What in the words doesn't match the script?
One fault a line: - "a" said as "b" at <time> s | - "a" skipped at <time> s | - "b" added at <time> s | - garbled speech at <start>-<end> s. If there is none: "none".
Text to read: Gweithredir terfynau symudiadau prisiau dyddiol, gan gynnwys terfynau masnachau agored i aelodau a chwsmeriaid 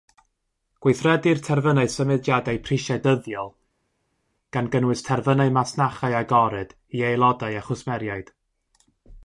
none